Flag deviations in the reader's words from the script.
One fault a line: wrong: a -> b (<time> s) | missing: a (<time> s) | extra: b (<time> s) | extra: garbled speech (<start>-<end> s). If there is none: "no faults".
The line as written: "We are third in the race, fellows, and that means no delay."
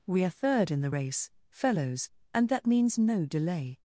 no faults